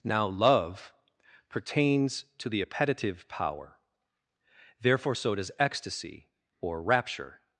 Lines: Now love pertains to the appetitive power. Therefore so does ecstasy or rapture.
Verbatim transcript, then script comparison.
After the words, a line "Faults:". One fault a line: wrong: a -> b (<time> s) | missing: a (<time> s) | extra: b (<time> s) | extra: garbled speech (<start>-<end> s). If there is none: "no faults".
Now love pertains to the appetitive power. Therefore so does ecstasy or rapture.
Faults:
no faults